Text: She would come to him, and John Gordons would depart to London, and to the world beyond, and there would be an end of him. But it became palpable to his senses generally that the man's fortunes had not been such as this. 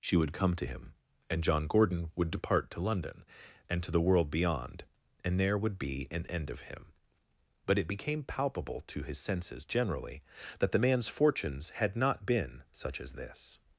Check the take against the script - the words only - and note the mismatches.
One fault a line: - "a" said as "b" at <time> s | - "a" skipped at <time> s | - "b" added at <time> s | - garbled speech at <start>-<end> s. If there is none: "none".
- "Gordons" said as "Gordon" at 1.7 s